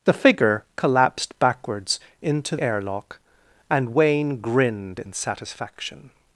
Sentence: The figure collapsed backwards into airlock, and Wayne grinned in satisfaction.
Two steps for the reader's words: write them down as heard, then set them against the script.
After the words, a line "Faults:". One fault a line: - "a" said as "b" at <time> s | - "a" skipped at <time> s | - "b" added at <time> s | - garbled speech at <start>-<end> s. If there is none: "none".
The figure collapsed backwards into airlock, and Wayne grinned in satisfaction.
Faults:
none